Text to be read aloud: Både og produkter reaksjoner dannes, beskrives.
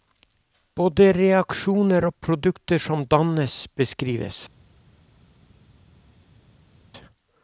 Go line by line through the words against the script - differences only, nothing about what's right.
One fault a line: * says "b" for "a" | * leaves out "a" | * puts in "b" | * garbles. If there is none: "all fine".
* puts in "reaksjoner"
* says "som" for "reaksjoner"